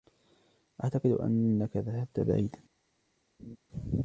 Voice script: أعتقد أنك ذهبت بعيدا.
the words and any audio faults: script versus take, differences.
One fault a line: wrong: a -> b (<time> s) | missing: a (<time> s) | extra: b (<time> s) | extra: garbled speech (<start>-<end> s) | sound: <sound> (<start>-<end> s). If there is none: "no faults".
sound: laugh (3.4-3.6 s)